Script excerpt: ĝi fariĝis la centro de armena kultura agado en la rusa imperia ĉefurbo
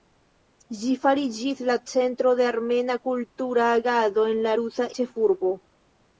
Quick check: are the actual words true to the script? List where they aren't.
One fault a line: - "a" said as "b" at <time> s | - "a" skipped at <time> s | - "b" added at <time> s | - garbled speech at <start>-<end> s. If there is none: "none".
- "imperia" skipped at 4.9 s